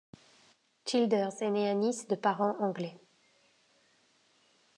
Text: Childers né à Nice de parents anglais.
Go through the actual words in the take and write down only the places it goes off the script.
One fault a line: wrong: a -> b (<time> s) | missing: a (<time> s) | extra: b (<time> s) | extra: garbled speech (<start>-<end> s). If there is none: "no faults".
extra: est (1.4 s)